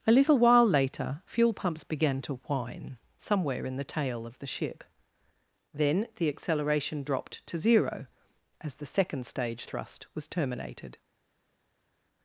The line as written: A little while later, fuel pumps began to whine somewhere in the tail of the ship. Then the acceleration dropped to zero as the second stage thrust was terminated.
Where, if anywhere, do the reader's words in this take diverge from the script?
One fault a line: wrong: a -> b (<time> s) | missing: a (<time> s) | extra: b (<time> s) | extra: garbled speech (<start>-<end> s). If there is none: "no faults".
no faults